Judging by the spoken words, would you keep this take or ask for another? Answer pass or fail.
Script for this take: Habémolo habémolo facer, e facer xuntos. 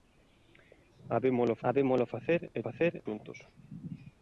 pass